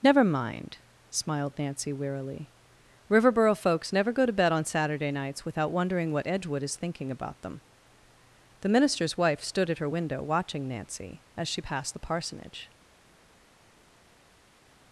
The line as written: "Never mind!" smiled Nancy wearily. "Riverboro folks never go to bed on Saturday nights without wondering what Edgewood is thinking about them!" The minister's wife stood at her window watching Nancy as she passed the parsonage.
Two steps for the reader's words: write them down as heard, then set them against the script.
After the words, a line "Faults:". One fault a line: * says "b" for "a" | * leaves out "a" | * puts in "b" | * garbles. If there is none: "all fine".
"Never mind!" smiled Nancy wearily. "Riverboro folks never go to bed on Saturday nights without wondering what Edgewood is thinking about them!" The minister's wife stood at her window watching Nancy as she passed the parsonage.
Faults:
all fine